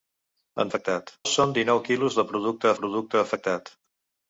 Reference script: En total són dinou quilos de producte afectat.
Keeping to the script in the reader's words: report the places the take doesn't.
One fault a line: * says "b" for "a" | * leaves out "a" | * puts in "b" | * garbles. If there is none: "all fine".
* says "afectat" for "total"
* puts in "producte"